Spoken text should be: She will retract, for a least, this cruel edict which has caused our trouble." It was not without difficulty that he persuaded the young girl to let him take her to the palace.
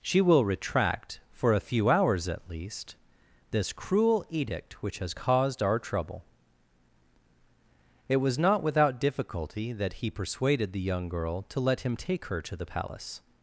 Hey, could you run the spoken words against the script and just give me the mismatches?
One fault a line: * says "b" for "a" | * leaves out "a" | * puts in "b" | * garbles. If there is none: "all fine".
* puts in "few hours at"